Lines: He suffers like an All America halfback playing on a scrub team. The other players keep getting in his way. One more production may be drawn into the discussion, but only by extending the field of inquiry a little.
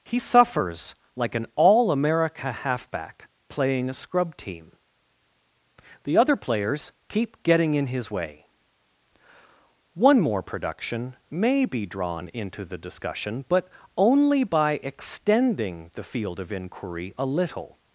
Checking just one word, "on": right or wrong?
wrong